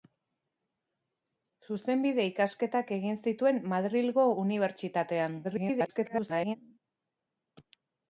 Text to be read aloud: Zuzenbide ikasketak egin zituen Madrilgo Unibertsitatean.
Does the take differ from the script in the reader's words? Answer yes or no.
yes